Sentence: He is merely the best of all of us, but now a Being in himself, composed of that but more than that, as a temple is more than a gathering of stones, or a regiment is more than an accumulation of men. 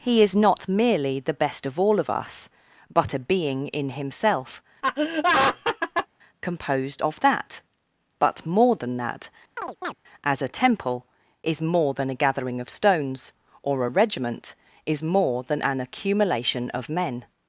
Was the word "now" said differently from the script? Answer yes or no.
yes